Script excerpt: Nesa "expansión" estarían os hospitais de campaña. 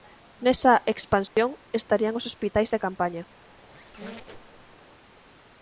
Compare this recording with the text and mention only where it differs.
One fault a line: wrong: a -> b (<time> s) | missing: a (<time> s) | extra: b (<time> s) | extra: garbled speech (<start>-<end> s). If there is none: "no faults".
no faults